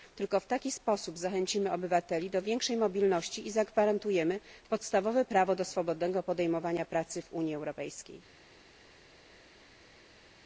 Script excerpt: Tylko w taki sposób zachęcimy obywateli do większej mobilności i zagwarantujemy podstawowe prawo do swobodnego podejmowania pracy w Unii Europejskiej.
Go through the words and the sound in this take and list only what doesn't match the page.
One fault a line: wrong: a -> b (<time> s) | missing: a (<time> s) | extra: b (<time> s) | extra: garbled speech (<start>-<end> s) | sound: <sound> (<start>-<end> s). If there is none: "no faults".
no faults